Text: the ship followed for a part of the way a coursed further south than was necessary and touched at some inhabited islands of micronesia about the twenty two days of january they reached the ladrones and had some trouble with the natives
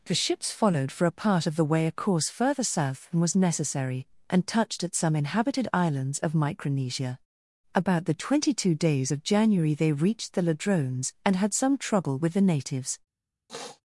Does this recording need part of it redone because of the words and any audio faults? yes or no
yes